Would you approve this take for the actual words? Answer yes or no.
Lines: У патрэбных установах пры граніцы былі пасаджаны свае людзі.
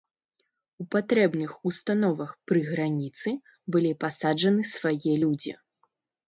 yes